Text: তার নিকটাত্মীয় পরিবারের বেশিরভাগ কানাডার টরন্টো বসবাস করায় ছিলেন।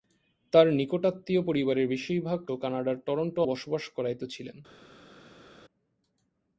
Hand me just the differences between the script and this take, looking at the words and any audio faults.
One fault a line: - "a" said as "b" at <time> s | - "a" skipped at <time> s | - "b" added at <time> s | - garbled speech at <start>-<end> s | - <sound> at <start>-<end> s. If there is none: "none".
none